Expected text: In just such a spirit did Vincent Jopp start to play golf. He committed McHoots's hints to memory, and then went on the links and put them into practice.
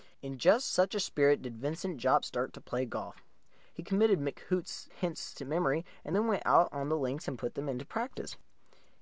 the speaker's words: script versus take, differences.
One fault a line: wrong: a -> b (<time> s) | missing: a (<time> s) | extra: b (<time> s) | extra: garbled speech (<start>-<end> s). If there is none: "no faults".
extra: out (6.4 s)